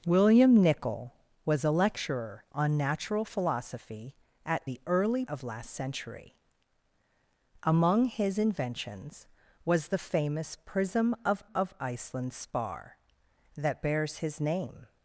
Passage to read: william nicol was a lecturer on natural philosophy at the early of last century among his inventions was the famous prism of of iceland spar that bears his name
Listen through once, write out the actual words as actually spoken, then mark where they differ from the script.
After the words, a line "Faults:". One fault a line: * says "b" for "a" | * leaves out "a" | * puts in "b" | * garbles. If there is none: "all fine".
william nicol was a lecturer on natural philosophy at the early of last century among his inventions was the famous prism of of iceland spar that bears his name
Faults:
all fine